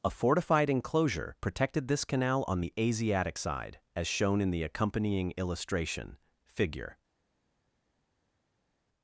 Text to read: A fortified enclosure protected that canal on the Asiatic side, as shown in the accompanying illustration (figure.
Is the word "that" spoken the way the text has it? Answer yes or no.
no